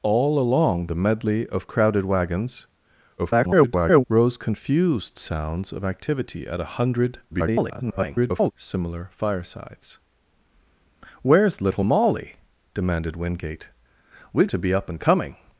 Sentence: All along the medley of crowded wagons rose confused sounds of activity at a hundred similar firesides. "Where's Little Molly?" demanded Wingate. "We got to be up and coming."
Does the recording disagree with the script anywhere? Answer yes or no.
yes